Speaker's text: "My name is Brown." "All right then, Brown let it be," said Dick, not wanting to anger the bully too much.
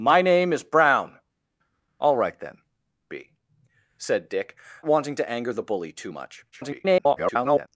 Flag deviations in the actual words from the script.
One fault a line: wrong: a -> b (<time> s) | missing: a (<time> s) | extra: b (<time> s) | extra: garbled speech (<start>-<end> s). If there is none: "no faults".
missing: Brown let it (2.6 s)
missing: not (4.6 s)
extra: garbled speech (6.5-7.7 s)